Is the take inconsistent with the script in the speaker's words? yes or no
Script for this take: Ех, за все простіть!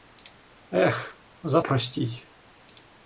yes